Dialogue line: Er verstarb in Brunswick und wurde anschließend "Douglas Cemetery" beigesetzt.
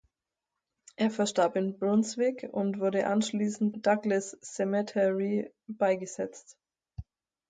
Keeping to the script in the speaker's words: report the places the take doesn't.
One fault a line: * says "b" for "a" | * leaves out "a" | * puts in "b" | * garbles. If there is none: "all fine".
all fine